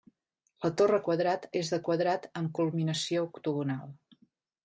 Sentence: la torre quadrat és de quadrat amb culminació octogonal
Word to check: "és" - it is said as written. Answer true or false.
true